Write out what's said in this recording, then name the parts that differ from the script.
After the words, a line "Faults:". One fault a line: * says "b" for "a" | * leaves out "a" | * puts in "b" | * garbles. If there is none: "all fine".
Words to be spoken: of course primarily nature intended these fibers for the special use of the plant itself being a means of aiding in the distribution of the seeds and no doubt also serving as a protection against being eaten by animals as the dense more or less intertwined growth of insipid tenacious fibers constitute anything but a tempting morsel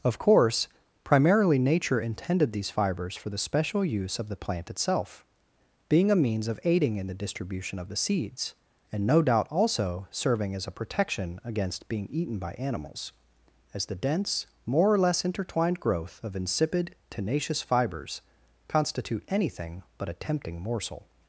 of course primarily nature intended these fibers for the special use of the plant itself being a means of aiding in the distribution of the seeds and no doubt also serving as a protection against being eaten by animals as the dense more or less intertwined growth of insipid tenacious fibers constitute anything but a tempting morsel
Faults:
all fine